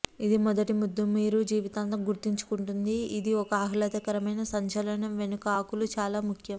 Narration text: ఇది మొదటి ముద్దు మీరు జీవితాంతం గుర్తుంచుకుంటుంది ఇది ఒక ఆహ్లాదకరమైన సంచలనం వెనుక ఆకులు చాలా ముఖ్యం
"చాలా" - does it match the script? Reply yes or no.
yes